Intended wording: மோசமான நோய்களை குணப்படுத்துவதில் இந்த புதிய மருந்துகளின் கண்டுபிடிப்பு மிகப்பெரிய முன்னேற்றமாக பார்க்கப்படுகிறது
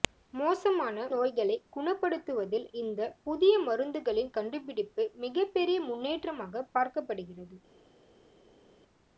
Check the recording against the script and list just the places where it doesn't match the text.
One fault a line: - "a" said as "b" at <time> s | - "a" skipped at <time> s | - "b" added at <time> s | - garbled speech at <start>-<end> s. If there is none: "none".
none